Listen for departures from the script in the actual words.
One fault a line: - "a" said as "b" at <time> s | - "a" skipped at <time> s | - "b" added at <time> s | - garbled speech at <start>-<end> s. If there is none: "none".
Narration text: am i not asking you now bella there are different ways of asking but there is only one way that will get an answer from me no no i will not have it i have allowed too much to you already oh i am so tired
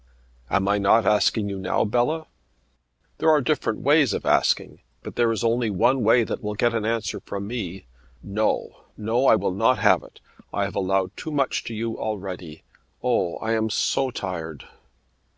none